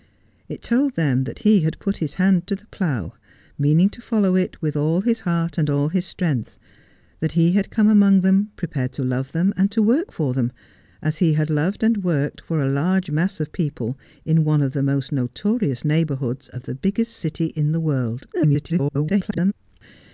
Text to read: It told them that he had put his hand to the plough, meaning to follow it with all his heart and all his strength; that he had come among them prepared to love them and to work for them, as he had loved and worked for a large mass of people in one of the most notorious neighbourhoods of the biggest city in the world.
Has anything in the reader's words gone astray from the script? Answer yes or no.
yes